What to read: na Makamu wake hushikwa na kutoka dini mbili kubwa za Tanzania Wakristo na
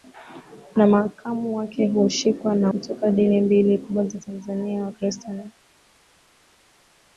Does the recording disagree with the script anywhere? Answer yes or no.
no